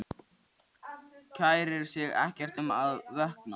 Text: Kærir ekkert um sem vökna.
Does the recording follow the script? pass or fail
fail